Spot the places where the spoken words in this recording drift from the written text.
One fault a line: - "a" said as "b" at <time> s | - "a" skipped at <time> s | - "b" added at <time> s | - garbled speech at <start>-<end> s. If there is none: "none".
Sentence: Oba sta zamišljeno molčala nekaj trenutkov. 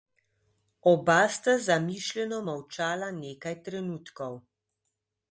none